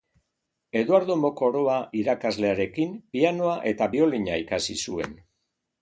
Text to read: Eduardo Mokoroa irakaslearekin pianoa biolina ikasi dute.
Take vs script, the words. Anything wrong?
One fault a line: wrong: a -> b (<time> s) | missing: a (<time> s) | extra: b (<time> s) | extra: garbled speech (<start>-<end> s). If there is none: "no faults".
extra: eta (3.7 s)
wrong: dute -> zuen (4.9 s)